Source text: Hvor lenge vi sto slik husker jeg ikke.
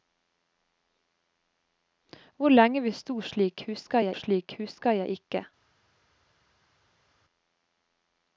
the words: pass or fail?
fail